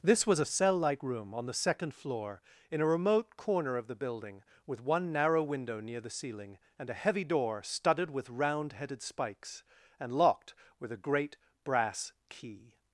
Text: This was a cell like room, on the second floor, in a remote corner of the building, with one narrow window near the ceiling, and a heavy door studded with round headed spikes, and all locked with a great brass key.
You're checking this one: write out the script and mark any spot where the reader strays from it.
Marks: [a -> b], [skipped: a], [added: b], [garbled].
This was a cell like room, on the second floor, in a remote corner of the building, with one narrow window near the ceiling, and a heavy door studded with round headed spikes, and [skipped: all] locked with a great brass key.